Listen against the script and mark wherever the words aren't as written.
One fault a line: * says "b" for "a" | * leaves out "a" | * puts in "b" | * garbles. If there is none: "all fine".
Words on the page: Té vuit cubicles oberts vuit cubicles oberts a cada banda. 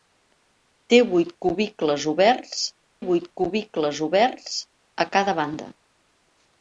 all fine